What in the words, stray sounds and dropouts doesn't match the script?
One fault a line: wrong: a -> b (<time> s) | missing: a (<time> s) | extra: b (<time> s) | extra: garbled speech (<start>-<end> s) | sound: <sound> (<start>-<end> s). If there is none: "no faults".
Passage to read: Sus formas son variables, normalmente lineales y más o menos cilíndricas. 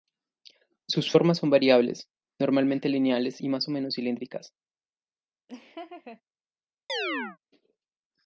sound: laugh (5.5-6.2 s)
sound: chirp (6.9-7.4 s)